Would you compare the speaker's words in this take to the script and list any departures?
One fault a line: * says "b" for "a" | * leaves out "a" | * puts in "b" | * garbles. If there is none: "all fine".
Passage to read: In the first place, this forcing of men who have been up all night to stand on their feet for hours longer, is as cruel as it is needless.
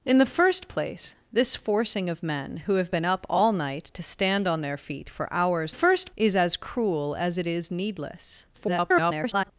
* says "first" for "longer"
* garbles